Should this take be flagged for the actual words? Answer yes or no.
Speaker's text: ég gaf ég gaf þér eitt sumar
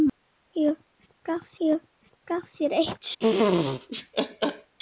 no